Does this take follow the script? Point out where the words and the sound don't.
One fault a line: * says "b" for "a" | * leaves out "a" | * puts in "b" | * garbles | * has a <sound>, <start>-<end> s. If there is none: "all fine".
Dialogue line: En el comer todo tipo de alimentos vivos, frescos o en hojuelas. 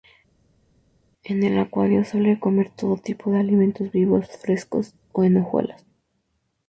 * puts in "acuario suele"